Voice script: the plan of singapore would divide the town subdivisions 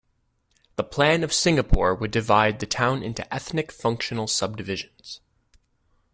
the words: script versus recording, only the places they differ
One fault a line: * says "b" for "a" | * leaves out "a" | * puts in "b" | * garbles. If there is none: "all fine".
* puts in "into ethnic functional"